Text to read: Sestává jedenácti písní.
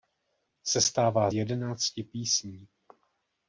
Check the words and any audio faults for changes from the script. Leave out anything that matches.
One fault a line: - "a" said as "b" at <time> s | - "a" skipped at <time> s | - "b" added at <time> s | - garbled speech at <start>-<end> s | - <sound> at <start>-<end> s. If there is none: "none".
none